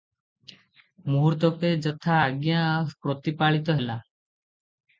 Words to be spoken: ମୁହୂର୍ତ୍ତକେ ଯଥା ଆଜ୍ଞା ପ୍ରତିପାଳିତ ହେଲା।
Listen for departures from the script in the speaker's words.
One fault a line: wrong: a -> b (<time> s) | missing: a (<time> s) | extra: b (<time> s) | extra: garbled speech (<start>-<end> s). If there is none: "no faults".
no faults